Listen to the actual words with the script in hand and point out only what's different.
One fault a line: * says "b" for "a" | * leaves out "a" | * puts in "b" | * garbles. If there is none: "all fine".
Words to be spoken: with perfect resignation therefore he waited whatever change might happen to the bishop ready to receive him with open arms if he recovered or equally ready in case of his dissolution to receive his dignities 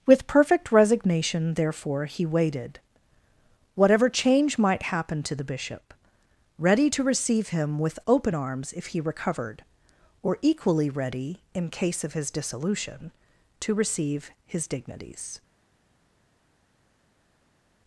all fine